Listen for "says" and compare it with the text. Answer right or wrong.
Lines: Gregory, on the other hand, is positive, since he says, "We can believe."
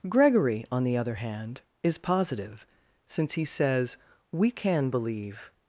right